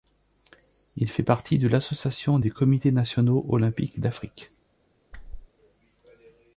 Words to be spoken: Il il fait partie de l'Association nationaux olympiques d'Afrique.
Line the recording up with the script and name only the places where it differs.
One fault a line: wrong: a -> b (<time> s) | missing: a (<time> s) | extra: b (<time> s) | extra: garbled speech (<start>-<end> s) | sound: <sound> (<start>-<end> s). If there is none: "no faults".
missing: il (1.1 s)
extra: des comités (2.4 s)
sound: whoosh (5.1-5.5 s)